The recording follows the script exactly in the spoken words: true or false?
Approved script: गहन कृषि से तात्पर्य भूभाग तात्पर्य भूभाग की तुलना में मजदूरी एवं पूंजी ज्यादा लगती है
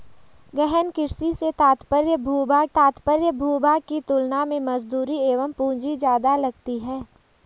true